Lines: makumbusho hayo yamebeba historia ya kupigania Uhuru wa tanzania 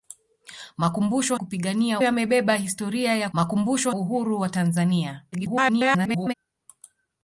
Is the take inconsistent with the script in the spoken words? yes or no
yes